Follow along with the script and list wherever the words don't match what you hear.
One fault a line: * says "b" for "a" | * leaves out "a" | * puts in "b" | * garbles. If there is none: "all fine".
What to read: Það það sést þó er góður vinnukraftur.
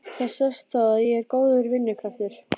* leaves out "það"
* puts in "að ég"